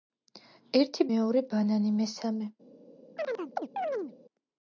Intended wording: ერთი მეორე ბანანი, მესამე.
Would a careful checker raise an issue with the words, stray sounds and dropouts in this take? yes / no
yes